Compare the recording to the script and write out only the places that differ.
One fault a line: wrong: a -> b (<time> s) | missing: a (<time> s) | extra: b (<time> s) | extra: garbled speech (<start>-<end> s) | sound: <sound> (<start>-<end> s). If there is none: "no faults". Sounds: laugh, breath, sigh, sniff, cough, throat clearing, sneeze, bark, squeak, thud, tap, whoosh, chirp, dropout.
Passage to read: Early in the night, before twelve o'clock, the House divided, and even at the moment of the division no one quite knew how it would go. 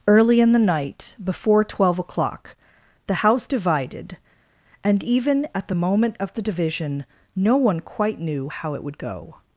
no faults